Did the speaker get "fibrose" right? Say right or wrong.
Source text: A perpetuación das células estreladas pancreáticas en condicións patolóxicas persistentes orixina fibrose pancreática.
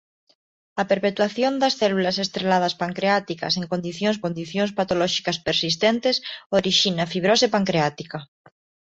right